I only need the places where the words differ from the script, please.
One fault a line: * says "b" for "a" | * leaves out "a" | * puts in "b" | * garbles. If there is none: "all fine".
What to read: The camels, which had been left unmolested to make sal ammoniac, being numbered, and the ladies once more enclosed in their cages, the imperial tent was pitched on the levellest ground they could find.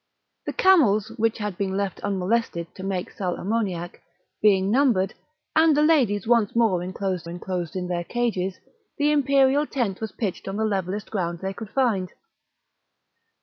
* puts in "enclosed"